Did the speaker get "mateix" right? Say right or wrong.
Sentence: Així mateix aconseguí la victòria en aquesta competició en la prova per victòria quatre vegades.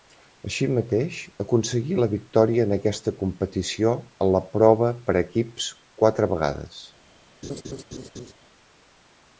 right